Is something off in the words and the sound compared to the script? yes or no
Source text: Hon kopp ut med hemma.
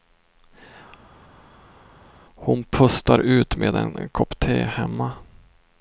yes